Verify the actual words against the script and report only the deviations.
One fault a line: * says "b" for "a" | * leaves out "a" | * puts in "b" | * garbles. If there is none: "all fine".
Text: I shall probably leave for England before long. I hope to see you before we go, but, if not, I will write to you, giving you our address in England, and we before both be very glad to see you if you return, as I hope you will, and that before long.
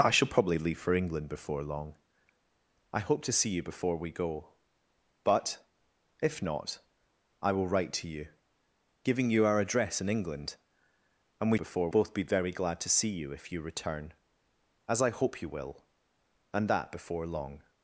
all fine